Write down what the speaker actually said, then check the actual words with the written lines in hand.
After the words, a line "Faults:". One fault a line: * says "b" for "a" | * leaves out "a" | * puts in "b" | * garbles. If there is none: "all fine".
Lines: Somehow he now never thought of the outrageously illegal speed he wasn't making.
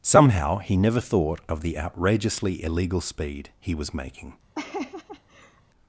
Somehow he never thought of the outrageously illegal speed he was making.
Faults:
* leaves out "now"
* says "was" for "wasn't"